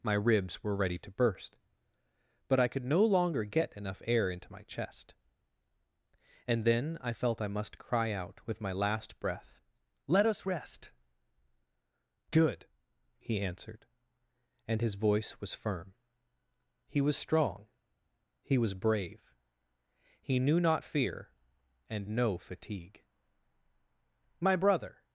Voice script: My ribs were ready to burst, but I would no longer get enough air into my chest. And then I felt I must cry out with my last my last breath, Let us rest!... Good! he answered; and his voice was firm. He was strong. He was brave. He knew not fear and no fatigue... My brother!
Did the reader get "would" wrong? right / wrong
wrong